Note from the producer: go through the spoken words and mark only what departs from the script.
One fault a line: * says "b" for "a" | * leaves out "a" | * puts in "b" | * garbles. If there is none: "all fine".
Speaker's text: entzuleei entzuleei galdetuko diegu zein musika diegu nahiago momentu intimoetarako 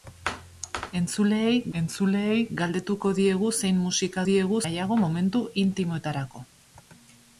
all fine